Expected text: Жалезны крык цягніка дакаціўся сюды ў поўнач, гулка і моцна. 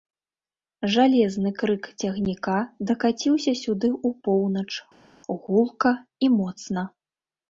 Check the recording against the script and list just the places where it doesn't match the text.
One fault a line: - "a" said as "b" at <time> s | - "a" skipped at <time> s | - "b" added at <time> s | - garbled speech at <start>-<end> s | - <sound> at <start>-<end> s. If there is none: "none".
none